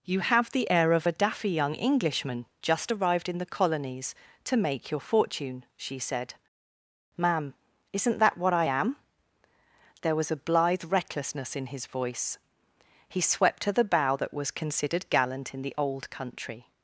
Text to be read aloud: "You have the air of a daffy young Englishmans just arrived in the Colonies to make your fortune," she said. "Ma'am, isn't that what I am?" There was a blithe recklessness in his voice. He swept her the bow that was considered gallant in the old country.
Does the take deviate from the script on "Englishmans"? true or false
true